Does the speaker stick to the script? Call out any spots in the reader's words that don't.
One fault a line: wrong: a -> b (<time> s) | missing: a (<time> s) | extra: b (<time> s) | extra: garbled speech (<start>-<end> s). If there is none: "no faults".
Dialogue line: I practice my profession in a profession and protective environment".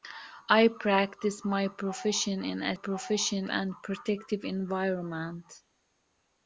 no faults